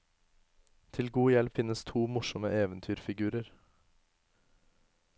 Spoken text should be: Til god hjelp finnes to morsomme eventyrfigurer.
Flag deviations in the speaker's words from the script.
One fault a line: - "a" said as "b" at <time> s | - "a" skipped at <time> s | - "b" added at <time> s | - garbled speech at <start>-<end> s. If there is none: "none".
none